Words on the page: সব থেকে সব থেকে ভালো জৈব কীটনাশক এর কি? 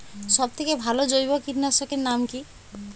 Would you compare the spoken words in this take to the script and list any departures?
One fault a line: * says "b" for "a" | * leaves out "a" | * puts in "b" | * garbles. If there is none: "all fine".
* leaves out "সব থেকে"
* puts in "নাম"